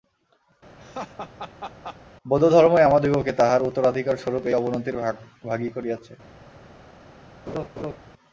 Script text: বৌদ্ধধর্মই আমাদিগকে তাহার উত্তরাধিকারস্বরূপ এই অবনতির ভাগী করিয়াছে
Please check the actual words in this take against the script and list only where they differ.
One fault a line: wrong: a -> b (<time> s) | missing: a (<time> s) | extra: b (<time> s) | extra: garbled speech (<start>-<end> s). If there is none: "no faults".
no faults